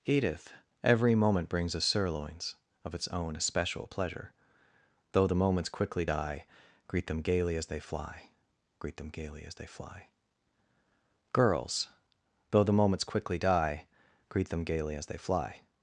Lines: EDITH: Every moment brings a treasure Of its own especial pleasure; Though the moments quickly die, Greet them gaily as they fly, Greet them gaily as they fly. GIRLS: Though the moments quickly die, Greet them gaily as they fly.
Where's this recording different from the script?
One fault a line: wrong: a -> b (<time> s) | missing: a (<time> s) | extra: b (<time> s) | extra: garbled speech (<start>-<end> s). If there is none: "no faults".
wrong: treasure -> sirloins (1.8 s)